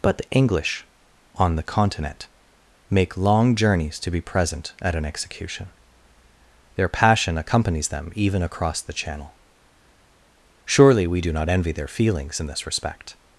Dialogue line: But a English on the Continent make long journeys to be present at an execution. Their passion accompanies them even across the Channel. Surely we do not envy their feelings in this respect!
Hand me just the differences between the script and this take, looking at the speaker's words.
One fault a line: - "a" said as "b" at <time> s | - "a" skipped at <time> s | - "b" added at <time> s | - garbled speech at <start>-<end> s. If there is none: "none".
- "a" said as "the" at 0.2 s